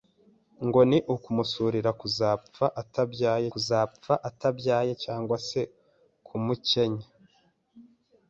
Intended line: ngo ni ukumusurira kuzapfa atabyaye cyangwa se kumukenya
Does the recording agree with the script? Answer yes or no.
no